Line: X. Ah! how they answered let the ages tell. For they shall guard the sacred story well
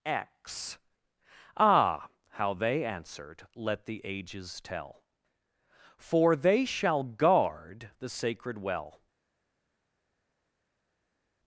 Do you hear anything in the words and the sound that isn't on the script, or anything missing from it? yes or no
yes